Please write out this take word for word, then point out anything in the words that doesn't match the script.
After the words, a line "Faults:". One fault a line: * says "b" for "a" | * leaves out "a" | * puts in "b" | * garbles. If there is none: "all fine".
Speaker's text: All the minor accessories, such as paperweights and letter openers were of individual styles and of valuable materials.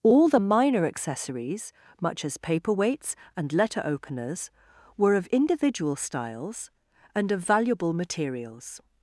All the minor accessories, much as paperweights and letter openers were of individual styles and of valuable materials.
Faults:
* says "much" for "such"